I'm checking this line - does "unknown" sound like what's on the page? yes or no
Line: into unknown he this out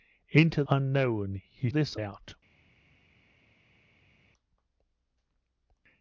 yes